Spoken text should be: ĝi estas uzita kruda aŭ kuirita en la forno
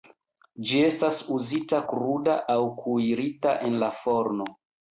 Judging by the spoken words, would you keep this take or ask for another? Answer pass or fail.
pass